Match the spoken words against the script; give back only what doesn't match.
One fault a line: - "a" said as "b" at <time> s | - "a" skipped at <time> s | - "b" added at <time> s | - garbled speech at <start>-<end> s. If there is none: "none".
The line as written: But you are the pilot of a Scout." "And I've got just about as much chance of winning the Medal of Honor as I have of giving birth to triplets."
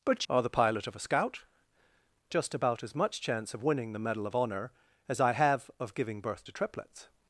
- "you" skipped at 0.2 s
- "And I've got" skipped at 1.4 s